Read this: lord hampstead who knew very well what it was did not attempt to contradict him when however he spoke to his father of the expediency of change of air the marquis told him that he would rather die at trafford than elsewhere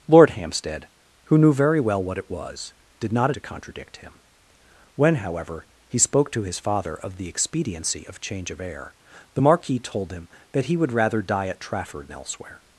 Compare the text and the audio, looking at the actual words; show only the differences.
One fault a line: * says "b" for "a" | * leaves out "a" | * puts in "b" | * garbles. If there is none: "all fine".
* leaves out "attempt"
* leaves out "than"